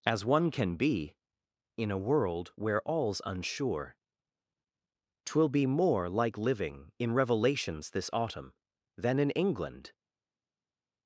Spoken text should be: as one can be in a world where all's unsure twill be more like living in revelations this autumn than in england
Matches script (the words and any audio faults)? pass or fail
pass